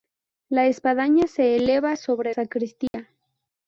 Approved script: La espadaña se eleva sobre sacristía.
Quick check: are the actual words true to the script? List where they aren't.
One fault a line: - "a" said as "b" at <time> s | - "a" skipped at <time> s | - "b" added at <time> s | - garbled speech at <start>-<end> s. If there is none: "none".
none